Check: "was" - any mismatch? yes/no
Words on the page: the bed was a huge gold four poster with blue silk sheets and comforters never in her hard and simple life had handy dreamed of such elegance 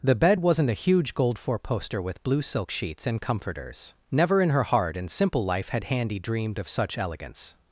yes